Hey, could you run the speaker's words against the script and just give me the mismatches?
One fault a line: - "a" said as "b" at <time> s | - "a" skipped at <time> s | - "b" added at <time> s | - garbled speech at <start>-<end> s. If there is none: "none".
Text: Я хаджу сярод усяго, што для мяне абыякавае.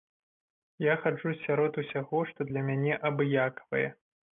none